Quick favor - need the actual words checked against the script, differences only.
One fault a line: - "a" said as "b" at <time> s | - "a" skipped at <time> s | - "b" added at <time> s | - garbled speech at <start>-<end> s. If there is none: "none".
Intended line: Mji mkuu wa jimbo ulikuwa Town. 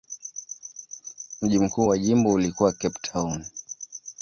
- "Cape" added at 2.7 s